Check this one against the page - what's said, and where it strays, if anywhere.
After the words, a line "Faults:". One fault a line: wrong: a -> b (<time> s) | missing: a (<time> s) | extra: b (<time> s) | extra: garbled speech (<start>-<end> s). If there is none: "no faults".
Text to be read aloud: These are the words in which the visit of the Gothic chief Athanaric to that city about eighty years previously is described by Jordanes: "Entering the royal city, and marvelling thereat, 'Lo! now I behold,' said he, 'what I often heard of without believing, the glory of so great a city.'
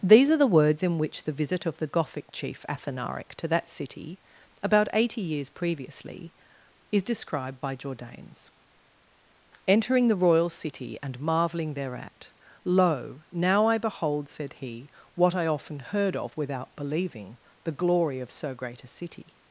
These are the words in which the visit of the Gothic chief Athanaric to that city about eighty years previously is described by Jordanes: "Entering the royal city, and marvelling thereat, 'Lo! now I behold,' said he, 'what I often heard of without believing, the glory of so great a city.'
Faults:
no faults